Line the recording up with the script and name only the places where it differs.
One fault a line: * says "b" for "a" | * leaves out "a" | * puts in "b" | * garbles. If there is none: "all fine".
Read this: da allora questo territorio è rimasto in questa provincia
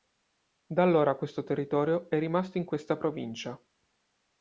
all fine